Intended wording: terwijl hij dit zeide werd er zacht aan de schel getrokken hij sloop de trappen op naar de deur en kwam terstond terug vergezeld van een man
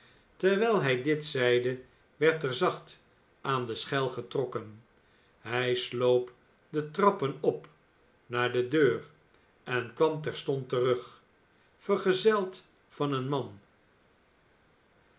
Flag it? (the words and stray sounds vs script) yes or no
no